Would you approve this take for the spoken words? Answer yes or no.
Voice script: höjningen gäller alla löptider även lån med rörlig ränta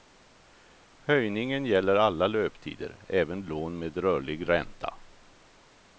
yes